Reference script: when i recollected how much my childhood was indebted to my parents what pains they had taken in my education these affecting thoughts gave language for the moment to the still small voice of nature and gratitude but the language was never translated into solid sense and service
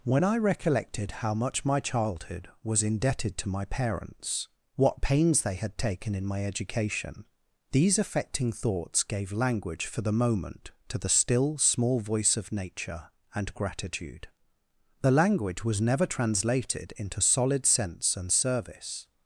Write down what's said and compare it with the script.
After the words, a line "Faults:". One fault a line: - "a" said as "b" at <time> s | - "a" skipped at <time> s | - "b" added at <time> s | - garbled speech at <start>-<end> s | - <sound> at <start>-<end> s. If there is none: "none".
when i recollected how much my childhood was indebted to my parents what pains they had taken in my education these affecting thoughts gave language for the moment to the still small voice of nature and gratitude the language was never translated into solid sense and service
Faults:
- "but" skipped at 14.3 s